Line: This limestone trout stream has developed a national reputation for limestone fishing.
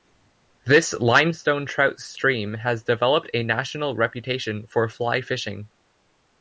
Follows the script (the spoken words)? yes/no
no